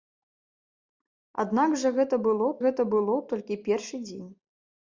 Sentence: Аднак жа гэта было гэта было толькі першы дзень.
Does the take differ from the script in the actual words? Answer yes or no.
no